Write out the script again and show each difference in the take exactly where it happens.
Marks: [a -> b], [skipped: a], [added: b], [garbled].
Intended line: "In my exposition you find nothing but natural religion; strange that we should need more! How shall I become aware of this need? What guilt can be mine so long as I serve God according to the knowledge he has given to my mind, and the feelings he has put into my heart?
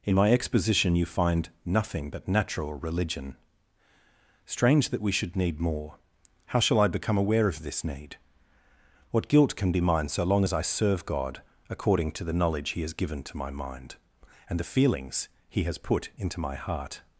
"In my exposition you find nothing but natural religion; strange that we should need more! How shall I become aware of this need? What guilt can be mine so long as I serve God according to the knowledge he has given to my mind, and the feelings he has put into my heart?